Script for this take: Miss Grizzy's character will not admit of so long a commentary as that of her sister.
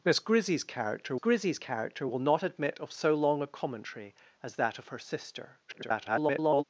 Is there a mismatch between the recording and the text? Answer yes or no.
yes